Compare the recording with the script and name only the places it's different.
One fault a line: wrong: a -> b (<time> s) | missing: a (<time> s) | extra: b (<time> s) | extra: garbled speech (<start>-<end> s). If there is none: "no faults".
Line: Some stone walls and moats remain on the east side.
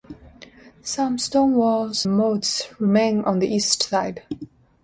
missing: and (2.1 s)